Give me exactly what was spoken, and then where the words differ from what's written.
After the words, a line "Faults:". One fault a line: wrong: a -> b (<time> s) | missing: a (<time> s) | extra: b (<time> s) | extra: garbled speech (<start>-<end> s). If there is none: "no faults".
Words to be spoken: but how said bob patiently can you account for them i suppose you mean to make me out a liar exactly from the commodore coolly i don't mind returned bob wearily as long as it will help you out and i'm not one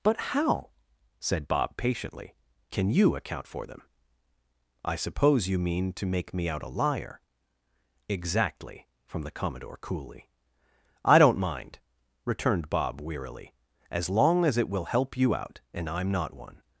but how said bob patiently can you account for them i suppose you mean to make me out a liar exactly from the commodore coolly i don't mind returned bob wearily as long as it will help you out and i'm not one
Faults:
no faults